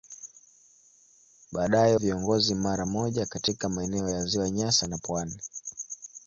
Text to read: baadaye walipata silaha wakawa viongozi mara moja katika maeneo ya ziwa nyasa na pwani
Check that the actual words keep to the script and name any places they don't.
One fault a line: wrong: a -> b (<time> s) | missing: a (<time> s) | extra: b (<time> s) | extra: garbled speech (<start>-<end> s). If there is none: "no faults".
missing: walipata silaha wakawa (2.0 s)